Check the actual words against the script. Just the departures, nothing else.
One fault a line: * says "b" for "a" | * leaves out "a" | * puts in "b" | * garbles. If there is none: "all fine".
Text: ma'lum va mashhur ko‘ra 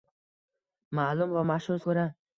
all fine